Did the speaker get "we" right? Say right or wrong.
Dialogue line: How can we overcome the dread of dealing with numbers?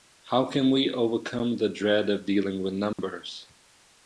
right